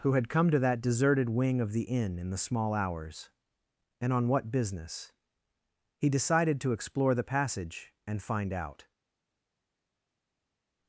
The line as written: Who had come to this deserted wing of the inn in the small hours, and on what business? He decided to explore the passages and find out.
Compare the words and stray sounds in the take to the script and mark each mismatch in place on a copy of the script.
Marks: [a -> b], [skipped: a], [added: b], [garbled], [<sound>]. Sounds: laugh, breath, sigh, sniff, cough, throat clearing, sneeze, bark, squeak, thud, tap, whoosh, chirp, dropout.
Who had come to [this -> that] deserted wing of the inn in the small hours, and on what business? He decided to explore the [passages -> passage] and find out.